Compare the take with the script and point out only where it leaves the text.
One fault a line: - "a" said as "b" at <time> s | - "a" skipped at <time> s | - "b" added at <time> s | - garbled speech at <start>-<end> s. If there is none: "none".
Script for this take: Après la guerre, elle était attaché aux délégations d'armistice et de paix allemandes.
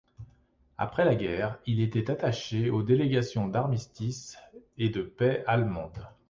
- "elle" said as "il" at 1.7 s